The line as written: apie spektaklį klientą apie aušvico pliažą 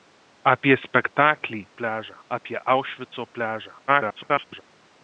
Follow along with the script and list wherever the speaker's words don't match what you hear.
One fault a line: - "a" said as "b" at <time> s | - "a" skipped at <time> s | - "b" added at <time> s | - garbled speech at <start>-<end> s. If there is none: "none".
- "klientą" said as "pliažą" at 1.8 s
- garbled speech at 3.9-4.6 s